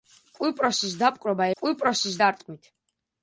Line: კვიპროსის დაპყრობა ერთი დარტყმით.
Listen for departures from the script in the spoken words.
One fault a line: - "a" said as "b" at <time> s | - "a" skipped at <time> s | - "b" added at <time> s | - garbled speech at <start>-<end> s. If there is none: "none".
- "ერთი" said as "კვიპროსის" at 1.6 s